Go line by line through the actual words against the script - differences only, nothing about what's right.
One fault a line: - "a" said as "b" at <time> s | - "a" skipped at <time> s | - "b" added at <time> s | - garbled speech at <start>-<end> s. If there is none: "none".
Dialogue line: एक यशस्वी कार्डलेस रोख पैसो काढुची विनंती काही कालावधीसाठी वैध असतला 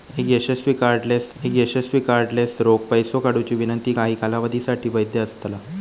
- "एक यशस्वी कार्डलेस" added at 1.4 s